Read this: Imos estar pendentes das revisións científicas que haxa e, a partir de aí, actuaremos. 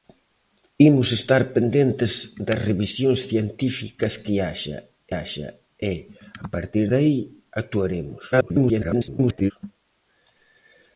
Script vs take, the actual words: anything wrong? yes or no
yes